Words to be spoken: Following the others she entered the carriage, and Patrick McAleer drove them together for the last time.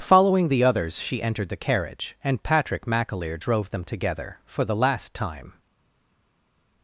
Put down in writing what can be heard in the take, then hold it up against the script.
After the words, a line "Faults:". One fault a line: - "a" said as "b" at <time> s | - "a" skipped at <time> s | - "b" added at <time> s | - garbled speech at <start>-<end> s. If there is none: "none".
Following the others she entered the carriage, and Patrick McAleer drove them together for the last time.
Faults:
none